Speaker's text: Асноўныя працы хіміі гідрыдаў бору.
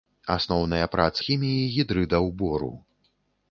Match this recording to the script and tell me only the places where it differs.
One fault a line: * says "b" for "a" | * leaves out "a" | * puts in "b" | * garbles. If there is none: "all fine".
all fine